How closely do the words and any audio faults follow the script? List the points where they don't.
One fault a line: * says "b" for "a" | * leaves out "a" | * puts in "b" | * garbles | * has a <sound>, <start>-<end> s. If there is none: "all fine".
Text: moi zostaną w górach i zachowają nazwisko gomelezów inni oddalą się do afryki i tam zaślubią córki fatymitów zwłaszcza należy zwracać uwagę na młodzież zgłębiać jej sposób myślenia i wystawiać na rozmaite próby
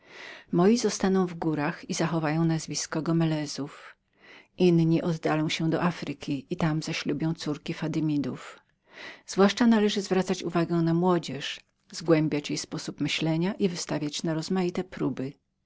all fine